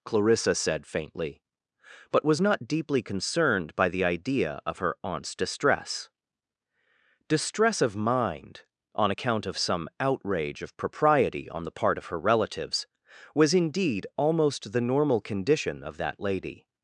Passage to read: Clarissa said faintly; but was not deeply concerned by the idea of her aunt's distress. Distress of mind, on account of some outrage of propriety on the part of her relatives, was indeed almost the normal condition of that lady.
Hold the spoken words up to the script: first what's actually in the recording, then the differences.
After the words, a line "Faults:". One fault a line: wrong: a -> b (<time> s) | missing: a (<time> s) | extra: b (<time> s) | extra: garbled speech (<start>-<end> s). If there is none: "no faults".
Clarissa said faintly; but was not deeply concerned by the idea of her aunt's distress. Distress of mind, on account of some outrage of propriety on the part of her relatives, was indeed almost the normal condition of that lady.
Faults:
no faults